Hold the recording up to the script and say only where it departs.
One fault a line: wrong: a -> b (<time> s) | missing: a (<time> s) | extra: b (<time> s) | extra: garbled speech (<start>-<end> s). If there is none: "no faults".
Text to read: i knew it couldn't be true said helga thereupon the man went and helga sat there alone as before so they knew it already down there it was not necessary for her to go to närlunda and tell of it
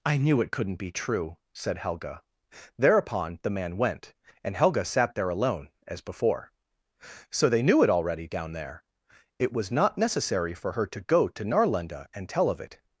no faults